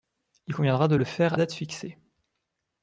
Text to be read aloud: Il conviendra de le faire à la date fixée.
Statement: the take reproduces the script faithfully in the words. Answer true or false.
false